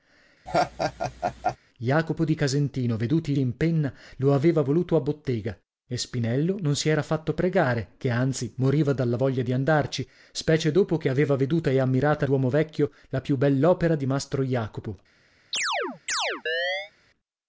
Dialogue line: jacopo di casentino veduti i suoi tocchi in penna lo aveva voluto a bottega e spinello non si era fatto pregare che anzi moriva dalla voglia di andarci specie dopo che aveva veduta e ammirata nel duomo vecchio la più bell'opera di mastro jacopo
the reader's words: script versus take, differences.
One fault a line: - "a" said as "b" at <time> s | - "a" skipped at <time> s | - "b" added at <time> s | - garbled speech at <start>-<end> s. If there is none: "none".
- "suoi tocchi" skipped at 3.4 s
- "nel" skipped at 12.3 s